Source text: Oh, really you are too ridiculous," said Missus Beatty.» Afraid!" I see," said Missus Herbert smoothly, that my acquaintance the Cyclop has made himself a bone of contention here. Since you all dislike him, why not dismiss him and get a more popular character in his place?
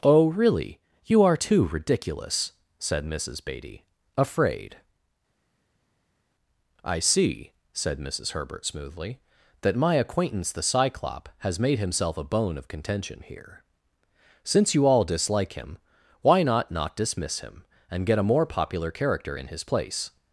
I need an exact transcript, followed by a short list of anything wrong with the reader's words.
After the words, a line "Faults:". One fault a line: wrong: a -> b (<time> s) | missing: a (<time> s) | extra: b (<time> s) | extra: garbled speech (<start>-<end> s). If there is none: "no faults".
Oh, really you are too ridiculous," said Missus Beatty.» Afraid!" I see," said Missus Herbert smoothly, that my acquaintance the Cyclop has made himself a bone of contention here. Since you all dislike him, why not not dismiss him and get a more popular character in his place?
Faults:
extra: not (16.7 s)